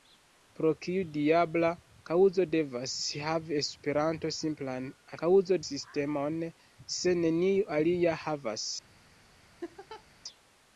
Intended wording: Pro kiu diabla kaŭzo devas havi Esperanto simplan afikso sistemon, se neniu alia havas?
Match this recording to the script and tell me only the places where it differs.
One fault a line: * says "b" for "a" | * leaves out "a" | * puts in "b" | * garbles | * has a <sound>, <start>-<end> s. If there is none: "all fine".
* says "kaŭzo" for "afikso"
* has a laugh, 9.6-10.0 s